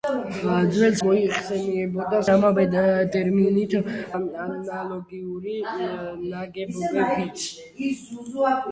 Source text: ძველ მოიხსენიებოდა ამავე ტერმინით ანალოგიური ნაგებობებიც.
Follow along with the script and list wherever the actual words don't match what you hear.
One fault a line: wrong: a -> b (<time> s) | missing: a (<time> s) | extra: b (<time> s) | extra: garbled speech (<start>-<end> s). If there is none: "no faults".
no faults